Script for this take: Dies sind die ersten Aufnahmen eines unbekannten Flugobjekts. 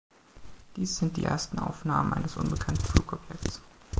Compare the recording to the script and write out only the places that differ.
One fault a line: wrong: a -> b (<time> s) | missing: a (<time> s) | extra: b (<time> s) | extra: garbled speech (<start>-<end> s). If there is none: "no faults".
no faults